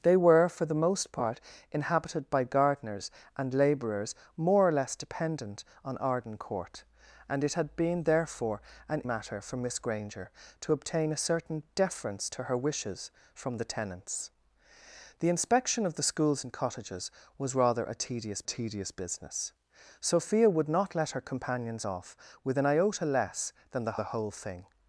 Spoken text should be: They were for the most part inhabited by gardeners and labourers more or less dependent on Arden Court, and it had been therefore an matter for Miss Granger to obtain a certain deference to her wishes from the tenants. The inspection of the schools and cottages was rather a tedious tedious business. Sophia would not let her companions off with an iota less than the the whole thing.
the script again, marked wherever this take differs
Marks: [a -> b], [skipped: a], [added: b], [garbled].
They were for the most part inhabited by gardeners and labourers more or less dependent on Arden Court, and it had been therefore an matter for Miss Granger to obtain a certain deference to her wishes from the tenants. The inspection of the schools and cottages was rather a tedious tedious business. Sophia would not let her companions off with an iota less than the the whole thing.